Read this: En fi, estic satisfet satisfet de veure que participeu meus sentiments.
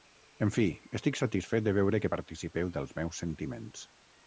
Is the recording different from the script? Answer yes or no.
yes